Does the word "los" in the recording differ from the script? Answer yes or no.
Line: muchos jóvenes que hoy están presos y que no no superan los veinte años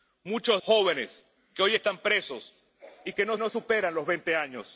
no